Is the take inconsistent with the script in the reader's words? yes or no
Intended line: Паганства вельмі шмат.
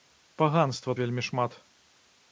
no